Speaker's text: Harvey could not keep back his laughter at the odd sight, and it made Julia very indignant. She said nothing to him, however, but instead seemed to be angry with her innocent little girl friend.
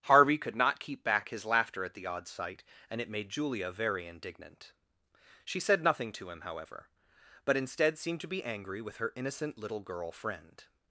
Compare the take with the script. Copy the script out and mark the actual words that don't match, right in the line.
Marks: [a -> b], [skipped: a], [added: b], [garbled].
Harvey could not keep back his laughter at the odd sight, and it made Julia very indignant. She said nothing to him, however, but instead seemed to be angry with her innocent little girl friend.